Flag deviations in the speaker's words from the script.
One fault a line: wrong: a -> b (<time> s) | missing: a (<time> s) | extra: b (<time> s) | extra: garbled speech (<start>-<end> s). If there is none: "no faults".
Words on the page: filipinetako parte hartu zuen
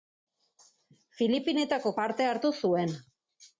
no faults